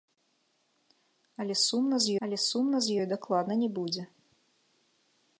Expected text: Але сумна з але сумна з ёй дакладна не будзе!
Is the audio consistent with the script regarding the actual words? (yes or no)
yes